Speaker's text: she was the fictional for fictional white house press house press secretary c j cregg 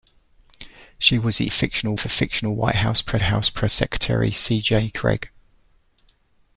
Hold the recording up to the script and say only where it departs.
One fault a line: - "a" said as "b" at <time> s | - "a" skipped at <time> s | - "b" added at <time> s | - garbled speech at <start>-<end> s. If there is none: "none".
none